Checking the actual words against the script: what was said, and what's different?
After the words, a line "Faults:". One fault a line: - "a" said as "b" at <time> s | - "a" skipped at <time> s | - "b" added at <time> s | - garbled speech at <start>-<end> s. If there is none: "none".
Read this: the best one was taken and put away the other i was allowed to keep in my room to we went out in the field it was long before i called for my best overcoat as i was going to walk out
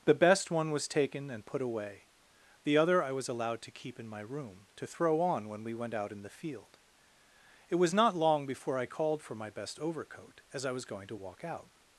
the best one was taken and put away the other i was allowed to keep in my room to throw on when we went out in the field it was not long before i called for my best overcoat as i was going to walk out
Faults:
- "throw on when" added at 4.9 s
- "not" added at 7.9 s